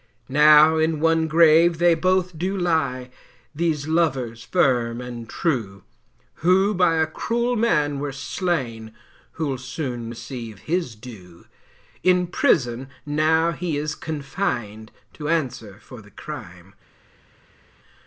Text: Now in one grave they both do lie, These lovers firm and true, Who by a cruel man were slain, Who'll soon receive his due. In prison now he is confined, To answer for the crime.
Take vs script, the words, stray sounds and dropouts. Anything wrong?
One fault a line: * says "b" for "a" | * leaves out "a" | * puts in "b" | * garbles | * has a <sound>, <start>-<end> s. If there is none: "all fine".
all fine